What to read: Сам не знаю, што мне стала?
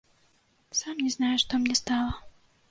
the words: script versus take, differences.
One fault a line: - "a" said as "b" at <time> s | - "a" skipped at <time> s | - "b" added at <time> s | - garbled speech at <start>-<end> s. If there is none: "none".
none